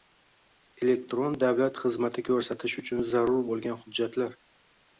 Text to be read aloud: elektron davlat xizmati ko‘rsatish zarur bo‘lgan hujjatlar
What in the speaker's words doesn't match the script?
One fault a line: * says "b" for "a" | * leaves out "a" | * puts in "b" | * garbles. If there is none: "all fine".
* puts in "uchun"